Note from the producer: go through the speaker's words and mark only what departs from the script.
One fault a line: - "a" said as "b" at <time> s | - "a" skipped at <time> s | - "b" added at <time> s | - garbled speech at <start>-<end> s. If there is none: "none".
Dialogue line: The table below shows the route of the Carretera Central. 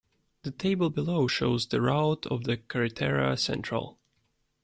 none